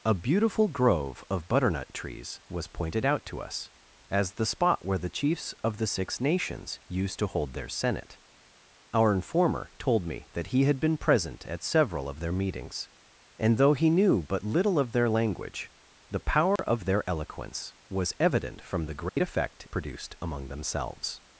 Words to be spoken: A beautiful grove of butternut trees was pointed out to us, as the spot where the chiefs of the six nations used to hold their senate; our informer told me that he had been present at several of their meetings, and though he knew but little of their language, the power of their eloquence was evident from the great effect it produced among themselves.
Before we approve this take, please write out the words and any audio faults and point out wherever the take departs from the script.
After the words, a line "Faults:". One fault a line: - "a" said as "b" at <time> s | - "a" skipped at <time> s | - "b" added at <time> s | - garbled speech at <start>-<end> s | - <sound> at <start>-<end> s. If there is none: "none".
A beautiful grove of butternut trees was pointed out to us, as the spot where the chiefs of the six nations used to hold their senate; our informer told me that he had been present at several of their meetings, and though he knew but little of their language, the power of their eloquence was evident from the great effect produced among themselves.
Faults:
- dropout at 16.6-16.6 s
- dropout at 19.1-19.2 s
- "it" skipped at 19.7 s